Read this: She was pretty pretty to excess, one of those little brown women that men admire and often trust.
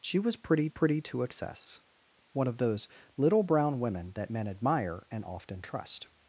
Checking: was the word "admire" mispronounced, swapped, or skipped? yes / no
no